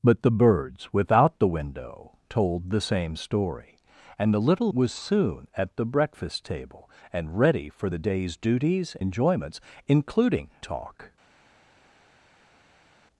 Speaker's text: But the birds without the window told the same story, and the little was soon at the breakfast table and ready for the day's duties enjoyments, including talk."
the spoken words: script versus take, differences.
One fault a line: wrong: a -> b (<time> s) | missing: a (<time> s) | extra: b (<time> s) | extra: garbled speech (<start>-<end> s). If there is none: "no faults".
no faults